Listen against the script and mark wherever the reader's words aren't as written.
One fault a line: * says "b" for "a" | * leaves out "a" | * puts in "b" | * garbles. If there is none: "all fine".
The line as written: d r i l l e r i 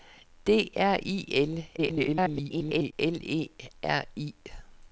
* garbles